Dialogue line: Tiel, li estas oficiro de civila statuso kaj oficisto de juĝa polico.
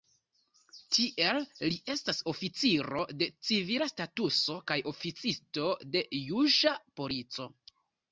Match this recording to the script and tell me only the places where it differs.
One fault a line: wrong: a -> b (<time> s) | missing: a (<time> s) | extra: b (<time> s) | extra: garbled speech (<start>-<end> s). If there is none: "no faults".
no faults